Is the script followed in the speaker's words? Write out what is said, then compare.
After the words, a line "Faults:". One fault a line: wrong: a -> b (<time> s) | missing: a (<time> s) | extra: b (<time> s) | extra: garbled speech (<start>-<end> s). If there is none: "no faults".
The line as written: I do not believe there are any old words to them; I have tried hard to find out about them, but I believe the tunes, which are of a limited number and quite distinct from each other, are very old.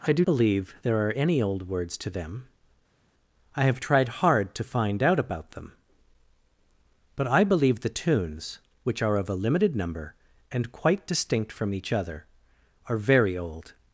I do believe there are any old words to them; I have tried hard to find out about them, but I believe the tunes, which are of a limited number and quite distinct from each other, are very old.
Faults:
missing: not (0.2 s)